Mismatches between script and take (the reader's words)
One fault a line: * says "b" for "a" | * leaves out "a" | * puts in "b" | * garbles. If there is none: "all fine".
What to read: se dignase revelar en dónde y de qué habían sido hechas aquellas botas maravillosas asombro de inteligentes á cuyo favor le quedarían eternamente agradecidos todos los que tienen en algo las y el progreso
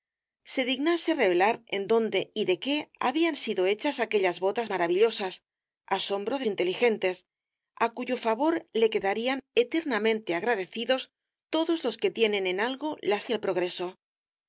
all fine